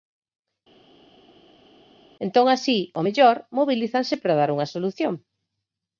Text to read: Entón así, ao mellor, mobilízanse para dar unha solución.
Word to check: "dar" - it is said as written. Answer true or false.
true